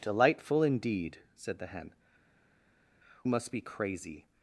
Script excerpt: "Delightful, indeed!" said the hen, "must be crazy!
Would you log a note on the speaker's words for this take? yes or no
no